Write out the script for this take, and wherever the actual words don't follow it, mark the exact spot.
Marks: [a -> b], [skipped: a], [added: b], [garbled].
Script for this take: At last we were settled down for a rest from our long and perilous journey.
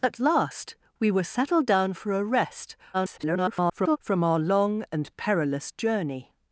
At last we were settled down for a rest [garbled] from our long and perilous journey.